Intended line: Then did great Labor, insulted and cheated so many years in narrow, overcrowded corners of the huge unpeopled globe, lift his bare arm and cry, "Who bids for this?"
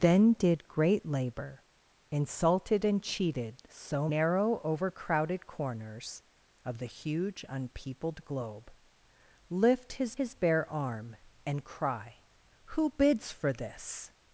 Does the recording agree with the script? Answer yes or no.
no